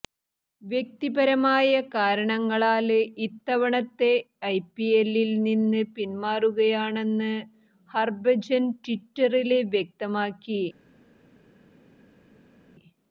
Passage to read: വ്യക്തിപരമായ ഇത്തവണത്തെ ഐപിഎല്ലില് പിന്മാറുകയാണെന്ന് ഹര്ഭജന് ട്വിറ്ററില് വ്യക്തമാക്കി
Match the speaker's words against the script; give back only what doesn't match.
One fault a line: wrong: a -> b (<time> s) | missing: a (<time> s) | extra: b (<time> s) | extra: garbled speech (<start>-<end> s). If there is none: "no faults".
extra: കാരണങ്ങളാല് (1.9 s)
extra: നിന്ന് (5.5 s)